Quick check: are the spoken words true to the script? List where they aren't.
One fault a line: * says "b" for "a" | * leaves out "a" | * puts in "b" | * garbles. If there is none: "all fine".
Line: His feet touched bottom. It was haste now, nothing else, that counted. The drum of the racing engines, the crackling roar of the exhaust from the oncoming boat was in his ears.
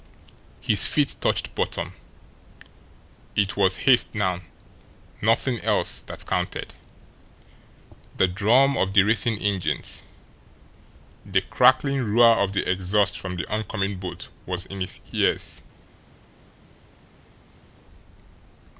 all fine